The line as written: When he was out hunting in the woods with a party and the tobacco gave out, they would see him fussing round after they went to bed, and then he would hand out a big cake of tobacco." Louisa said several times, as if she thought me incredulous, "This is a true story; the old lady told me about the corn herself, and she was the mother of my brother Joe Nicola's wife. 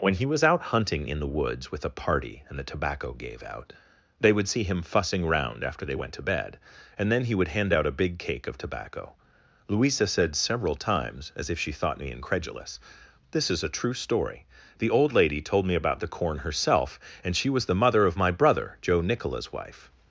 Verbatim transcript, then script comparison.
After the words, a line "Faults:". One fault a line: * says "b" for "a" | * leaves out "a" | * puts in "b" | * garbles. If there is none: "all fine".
When he was out hunting in the woods with a party and the tobacco gave out, they would see him fussing round after they went to bed, and then he would hand out a big cake of tobacco." Louisa said several times, as if she thought me incredulous, "This is a true story; the old lady told me about the corn herself, and she was the mother of my brother Joe Nicola's wife.
Faults:
all fine